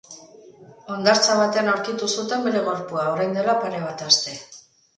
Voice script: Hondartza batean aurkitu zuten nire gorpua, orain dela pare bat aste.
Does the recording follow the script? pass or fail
fail